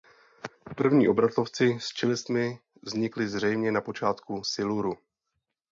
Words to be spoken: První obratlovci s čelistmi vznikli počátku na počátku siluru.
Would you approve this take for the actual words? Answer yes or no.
no